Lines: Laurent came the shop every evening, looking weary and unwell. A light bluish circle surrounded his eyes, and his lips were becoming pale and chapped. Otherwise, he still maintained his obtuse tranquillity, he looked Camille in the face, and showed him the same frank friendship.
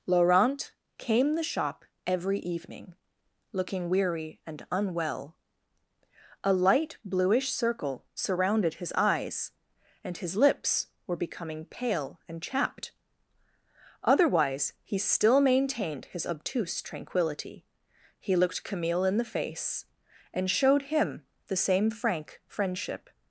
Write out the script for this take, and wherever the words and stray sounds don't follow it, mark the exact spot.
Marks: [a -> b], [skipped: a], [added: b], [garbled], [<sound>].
Laurent came the shop every evening, looking weary and unwell. A light bluish circle surrounded his eyes, and his lips were becoming pale and chapped. Otherwise, he still maintained his obtuse tranquillity, he looked Camille in the face, and showed him the same frank friendship.